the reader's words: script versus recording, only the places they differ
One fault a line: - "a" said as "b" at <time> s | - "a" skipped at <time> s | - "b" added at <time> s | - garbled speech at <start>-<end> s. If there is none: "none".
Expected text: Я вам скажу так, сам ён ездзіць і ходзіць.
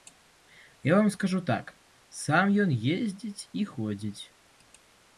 none